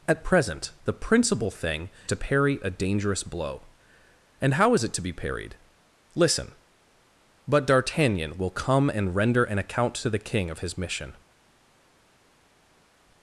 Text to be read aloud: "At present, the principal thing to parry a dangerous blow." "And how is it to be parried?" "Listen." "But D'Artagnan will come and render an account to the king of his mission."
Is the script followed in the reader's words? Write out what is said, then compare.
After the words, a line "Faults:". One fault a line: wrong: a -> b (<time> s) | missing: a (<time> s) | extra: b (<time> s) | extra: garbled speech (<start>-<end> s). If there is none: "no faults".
"At present, the principal thing to parry a dangerous blow." "And how is it to be parried?" "Listen." "But D'Artagnan will come and render an account to the king of his mission."
Faults:
no faults